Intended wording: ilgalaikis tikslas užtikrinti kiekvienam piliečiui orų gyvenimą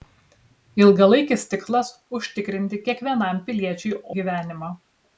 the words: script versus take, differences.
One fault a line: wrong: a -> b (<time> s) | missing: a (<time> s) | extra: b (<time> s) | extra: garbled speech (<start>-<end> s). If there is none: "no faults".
missing: orų (3.9 s)